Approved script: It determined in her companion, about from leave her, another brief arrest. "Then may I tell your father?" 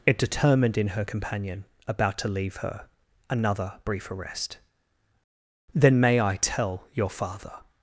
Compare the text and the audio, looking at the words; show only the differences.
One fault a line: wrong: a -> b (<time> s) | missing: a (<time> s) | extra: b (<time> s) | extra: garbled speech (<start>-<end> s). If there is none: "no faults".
wrong: from -> to (2.2 s)